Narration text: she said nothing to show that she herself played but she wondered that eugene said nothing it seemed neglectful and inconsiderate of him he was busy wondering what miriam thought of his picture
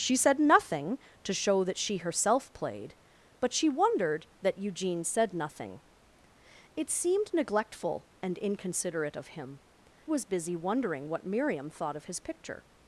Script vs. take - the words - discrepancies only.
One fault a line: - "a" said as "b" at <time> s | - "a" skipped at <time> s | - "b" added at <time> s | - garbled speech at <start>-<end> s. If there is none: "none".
- "he" skipped at 9.6 s